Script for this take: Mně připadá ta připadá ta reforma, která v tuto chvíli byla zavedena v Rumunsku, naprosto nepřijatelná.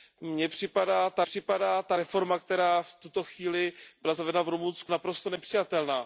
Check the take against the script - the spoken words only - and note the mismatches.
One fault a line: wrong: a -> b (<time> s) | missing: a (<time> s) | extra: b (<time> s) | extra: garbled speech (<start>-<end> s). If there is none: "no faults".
no faults